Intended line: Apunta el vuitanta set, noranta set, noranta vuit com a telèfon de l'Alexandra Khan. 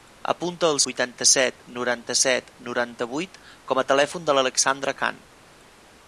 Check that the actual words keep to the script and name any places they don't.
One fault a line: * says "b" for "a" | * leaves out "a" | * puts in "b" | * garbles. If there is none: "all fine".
all fine